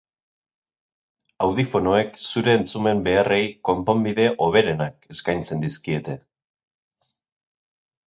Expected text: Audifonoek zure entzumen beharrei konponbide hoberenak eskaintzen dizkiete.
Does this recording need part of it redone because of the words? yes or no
no